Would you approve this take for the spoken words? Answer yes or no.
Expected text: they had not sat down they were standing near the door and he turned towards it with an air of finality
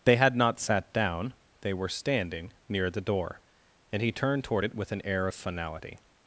no